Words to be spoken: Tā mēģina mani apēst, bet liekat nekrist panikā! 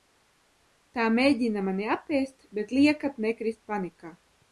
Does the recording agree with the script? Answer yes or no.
yes